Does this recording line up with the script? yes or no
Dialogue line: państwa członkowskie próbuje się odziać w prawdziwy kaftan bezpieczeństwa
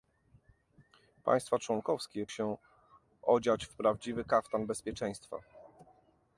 no